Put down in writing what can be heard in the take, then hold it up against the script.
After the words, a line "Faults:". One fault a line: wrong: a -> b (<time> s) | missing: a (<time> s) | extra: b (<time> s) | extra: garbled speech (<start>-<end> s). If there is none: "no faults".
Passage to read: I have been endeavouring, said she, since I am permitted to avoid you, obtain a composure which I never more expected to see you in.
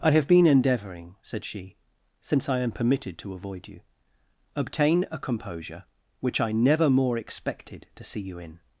I have been endeavouring, said she, since I am permitted to avoid you, obtain a composure which I never more expected to see you in.
Faults:
no faults